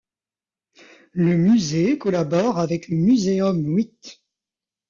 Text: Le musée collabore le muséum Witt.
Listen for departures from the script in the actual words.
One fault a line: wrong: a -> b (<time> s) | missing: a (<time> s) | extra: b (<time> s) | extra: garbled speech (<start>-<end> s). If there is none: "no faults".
extra: avec (2.6 s)